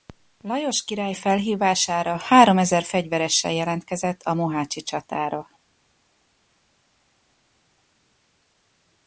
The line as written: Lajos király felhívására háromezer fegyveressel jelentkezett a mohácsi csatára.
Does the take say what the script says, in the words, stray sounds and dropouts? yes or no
yes